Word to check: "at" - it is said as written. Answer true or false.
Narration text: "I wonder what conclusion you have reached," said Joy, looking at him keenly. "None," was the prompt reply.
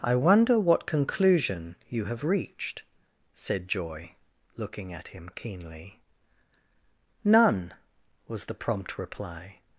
true